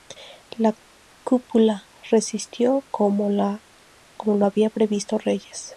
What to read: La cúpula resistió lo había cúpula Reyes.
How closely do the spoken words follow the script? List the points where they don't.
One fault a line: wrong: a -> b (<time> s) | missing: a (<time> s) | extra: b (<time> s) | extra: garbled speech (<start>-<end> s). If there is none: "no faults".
extra: como (2.9 s)
wrong: cúpula -> previsto (4.7 s)